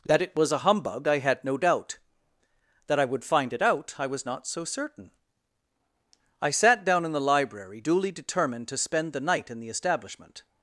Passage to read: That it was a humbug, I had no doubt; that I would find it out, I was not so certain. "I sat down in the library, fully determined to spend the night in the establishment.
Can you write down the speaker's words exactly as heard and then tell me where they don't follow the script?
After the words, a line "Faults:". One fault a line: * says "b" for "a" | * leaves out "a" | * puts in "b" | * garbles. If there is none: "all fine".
That it was a humbug, I had no doubt; that I would find it out, I was not so certain. "I sat down in the library, duly determined to spend the night in the establishment.
Faults:
* says "duly" for "fully"